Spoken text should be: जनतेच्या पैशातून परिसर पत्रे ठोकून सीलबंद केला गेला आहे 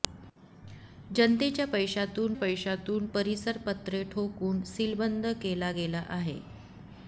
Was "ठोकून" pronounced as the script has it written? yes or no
yes